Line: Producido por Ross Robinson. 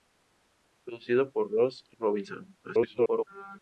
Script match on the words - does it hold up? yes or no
no